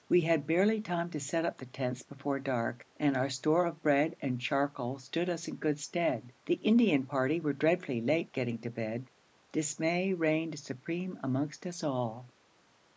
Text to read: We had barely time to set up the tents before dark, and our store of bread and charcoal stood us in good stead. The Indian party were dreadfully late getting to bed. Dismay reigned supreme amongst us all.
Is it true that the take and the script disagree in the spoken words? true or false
false